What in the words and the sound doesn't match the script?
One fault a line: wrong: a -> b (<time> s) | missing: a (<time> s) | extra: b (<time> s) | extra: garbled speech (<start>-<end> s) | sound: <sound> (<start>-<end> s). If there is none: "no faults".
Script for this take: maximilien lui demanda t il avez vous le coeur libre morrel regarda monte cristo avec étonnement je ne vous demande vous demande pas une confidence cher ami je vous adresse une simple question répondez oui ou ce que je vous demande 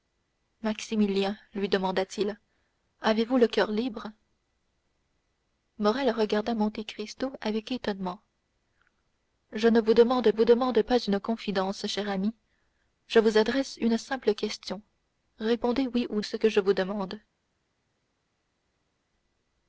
no faults